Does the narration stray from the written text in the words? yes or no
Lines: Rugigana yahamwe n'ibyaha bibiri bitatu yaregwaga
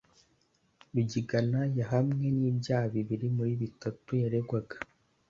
yes